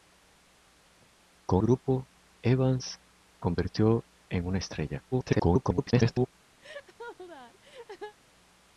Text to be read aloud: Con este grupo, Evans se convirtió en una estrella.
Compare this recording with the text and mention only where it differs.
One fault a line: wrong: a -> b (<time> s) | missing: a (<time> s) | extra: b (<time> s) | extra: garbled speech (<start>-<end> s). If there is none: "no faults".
missing: este (1.6 s)
missing: se (3.0 s)
extra: garbled speech (5.1-6.3 s)